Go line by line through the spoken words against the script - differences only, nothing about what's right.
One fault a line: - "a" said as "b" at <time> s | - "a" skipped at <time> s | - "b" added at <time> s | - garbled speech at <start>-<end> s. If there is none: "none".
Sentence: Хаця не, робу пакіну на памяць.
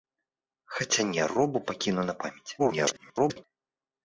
- garbled speech at 2.6-3.4 s